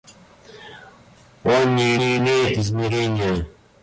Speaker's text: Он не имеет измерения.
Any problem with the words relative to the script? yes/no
yes